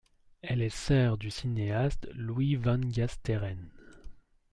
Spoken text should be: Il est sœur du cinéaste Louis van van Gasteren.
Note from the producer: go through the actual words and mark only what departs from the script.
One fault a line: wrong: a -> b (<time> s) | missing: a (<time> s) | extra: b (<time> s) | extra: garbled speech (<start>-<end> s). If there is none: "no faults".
wrong: Il -> Elle (0.4 s)
missing: van (2.8 s)